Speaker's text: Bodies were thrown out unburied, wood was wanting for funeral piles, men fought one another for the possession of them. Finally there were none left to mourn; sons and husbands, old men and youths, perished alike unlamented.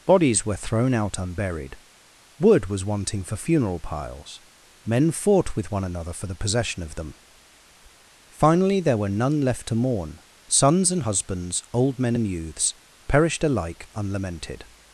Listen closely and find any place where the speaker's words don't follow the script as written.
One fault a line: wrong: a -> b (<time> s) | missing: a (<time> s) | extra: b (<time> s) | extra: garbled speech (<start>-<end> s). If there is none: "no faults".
extra: with (5.5 s)